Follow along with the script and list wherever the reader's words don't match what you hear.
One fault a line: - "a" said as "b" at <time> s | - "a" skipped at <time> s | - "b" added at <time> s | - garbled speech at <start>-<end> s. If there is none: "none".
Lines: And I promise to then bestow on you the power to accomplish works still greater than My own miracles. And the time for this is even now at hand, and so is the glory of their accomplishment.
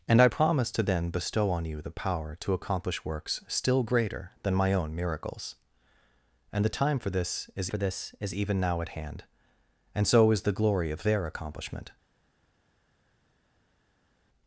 - "for this is" added at 7.7 s